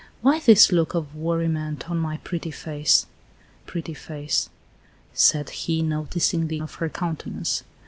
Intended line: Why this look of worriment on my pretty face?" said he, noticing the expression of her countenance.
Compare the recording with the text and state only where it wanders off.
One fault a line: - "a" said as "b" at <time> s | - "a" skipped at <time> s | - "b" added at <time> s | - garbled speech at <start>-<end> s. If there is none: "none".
- "pretty face" added at 3.7 s
- "expression" skipped at 6.6 s